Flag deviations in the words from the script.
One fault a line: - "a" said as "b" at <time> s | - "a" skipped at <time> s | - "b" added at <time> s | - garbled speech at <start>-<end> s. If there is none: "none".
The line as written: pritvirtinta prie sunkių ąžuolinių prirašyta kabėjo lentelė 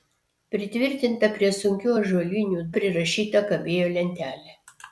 none